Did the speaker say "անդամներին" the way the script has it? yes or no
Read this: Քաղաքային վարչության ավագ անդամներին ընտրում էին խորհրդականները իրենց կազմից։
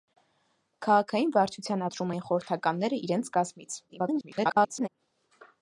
no